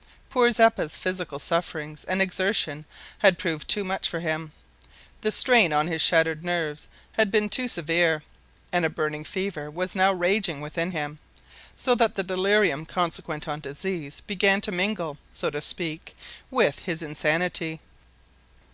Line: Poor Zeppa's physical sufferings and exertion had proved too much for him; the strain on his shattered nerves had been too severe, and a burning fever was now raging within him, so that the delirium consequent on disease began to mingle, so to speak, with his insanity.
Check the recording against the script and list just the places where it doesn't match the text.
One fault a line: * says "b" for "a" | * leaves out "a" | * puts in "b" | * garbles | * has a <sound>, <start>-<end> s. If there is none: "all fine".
all fine